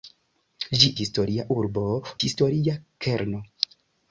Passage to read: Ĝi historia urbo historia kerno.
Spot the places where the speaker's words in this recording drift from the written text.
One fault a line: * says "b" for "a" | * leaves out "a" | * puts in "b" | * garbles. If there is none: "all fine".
all fine